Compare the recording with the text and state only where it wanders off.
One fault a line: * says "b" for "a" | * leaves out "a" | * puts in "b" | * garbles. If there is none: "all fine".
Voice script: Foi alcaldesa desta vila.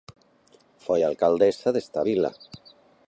all fine